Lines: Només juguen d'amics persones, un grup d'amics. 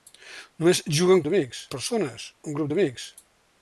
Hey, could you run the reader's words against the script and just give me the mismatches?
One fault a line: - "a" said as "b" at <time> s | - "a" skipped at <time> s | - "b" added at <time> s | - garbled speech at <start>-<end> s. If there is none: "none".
none